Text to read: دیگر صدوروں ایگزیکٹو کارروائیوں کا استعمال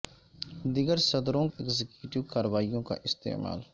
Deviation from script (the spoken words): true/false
false